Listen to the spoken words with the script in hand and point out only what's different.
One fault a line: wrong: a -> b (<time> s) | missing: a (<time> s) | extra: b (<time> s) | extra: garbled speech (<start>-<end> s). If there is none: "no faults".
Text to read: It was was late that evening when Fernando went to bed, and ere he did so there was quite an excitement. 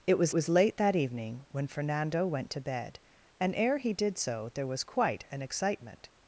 no faults